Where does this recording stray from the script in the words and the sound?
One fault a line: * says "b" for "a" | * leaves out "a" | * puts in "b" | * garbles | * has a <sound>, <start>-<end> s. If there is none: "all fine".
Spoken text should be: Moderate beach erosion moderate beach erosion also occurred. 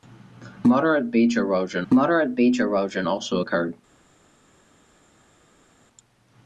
all fine